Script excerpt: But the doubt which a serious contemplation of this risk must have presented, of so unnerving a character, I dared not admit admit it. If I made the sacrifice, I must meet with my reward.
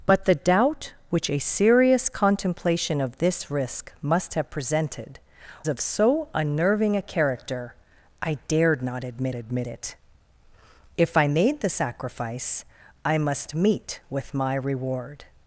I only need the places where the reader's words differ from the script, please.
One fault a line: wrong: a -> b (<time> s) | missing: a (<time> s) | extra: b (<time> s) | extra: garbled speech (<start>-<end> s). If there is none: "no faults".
no faults